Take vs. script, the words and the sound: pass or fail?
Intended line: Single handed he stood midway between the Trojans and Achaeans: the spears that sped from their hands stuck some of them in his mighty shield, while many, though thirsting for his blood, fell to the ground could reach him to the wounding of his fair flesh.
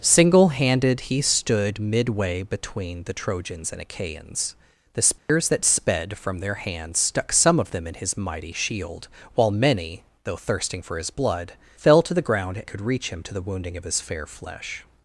fail